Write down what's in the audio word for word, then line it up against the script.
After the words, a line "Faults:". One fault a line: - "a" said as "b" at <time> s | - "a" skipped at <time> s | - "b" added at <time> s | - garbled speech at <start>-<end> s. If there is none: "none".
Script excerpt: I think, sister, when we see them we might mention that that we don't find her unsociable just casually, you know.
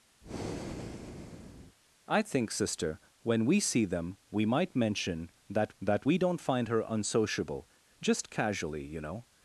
I think, sister, when we see them we might mention that that we don't find her unsociable just casually, you know.
Faults:
none